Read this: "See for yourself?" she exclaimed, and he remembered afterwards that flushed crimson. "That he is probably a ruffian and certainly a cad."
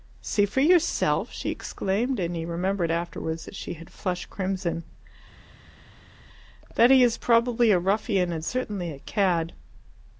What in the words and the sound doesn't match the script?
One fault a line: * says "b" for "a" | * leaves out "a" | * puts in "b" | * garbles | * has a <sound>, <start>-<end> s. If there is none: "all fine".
* puts in "she had"